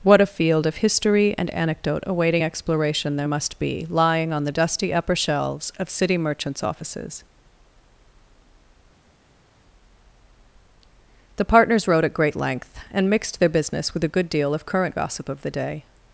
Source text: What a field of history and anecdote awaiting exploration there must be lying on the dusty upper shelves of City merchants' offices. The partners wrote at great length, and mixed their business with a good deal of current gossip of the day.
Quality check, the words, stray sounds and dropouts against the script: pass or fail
pass